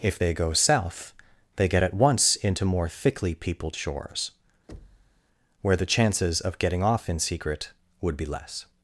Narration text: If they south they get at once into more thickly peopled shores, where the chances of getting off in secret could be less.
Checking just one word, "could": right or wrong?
wrong